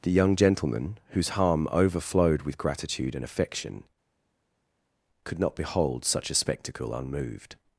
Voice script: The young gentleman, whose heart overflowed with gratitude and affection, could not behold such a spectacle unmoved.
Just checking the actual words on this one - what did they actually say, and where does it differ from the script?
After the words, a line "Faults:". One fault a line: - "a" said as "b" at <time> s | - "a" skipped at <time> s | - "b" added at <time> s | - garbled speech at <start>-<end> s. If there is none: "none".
The young gentleman, whose harm overflowed with gratitude and affection, could not behold such a spectacle unmoved.
Faults:
- "heart" said as "harm" at 1.4 s